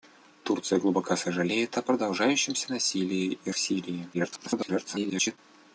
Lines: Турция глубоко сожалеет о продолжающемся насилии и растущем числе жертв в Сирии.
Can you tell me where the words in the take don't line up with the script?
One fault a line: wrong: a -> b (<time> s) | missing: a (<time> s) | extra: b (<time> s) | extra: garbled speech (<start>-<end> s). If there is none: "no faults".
missing: растущем числе жертв (3.5 s)
extra: garbled speech (4.1-5.4 s)